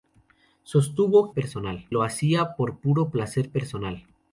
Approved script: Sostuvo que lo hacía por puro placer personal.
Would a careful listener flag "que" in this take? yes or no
yes